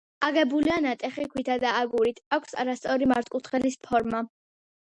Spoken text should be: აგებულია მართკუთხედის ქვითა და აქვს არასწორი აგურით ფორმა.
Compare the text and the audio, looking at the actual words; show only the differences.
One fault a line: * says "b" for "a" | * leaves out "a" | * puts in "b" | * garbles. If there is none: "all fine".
* says "ნატეხი" for "მართკუთხედის"
* puts in "აგურით"
* says "მართკუთხედის" for "აგურით"